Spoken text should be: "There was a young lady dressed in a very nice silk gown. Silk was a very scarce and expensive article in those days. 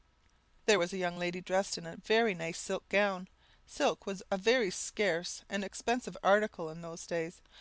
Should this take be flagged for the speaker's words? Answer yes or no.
no